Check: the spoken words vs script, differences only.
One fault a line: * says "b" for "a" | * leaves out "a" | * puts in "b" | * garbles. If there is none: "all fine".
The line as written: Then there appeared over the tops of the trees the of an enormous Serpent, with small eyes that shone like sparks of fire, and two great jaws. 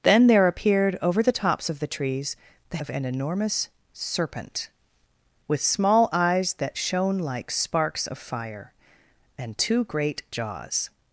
all fine